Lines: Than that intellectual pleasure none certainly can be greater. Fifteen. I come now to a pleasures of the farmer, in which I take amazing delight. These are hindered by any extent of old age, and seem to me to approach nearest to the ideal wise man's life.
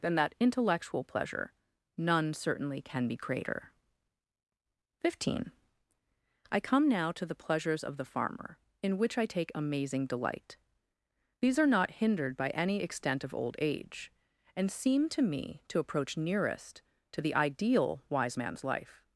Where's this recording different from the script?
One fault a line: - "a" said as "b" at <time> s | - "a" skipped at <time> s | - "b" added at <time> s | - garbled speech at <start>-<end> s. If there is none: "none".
- "a" said as "the" at 7.3 s
- "not" added at 11.7 s